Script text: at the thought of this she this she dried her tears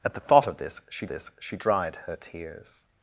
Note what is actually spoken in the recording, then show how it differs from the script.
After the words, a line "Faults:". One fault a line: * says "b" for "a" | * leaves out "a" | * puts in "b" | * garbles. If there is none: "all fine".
at the thought of this she this she dried her tears
Faults:
all fine